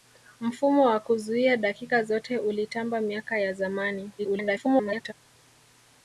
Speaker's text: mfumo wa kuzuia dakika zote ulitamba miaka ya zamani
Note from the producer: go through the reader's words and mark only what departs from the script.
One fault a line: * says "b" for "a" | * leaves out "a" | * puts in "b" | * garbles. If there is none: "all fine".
* garbles